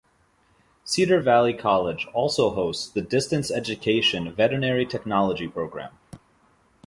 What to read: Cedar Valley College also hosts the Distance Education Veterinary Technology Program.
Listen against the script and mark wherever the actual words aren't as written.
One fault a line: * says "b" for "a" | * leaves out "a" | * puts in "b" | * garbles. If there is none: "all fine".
all fine